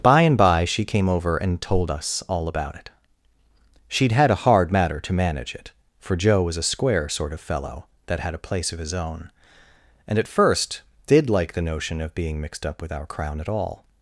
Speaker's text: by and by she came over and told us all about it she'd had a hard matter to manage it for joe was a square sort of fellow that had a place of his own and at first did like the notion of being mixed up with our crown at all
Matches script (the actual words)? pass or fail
pass